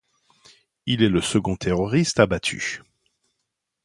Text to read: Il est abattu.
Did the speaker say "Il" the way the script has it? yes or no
yes